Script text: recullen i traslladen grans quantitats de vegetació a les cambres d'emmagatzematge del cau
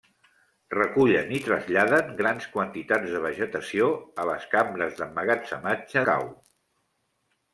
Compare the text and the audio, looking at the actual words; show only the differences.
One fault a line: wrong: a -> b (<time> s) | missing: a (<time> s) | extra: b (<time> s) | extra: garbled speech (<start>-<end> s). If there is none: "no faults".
missing: del (6.0 s)